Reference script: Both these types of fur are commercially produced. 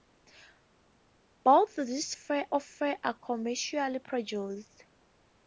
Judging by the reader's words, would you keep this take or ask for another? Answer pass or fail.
fail